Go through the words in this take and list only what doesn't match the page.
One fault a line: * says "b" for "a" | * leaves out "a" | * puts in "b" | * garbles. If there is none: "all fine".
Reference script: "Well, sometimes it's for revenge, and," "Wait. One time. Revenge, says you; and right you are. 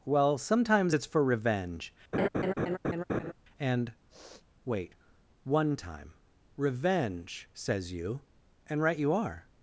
all fine